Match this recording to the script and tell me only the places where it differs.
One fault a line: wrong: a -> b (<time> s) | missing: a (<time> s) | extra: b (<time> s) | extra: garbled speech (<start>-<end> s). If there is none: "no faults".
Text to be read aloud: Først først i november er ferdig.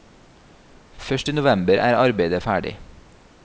missing: først (1.3 s)
extra: arbeidet (2.0 s)